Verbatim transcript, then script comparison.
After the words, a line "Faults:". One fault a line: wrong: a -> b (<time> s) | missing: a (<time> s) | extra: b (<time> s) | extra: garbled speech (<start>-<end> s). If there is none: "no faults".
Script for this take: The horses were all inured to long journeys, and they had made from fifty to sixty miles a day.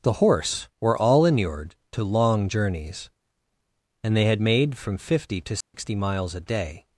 The horse were all inured to long journeys, and they had made from fifty to sixty miles a day.
Faults:
wrong: horses -> horse (0.1 s)